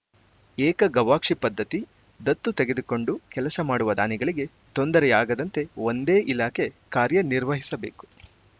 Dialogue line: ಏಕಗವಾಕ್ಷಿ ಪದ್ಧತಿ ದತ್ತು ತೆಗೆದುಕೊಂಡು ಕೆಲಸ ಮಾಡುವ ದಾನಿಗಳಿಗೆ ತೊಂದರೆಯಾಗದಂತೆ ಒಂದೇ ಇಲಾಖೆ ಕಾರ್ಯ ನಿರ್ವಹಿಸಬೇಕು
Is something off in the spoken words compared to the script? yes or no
no